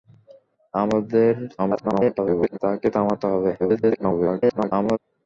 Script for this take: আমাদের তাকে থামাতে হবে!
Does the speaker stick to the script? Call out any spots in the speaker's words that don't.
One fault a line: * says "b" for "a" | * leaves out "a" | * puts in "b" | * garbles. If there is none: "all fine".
* garbles
* garbles